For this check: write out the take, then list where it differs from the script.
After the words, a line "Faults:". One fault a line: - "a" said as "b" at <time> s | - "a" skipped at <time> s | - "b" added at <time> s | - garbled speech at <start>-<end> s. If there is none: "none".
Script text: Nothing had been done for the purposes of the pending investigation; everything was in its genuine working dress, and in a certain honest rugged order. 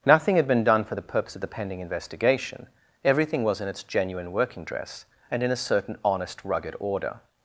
Nothing had been done for the purpose of the pending investigation; everything was in its genuine working dress, and in a certain honest rugged order.
Faults:
- "purposes" said as "purpose" at 1.0 s